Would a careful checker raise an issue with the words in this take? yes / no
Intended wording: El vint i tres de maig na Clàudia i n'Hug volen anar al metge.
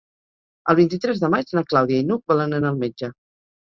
no